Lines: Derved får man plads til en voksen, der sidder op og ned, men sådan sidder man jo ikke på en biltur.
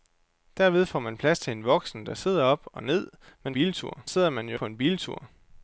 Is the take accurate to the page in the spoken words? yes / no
no